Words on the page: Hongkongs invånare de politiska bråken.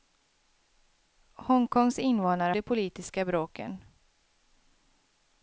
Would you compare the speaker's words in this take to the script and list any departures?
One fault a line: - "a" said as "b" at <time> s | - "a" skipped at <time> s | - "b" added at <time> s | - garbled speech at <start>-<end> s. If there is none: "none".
none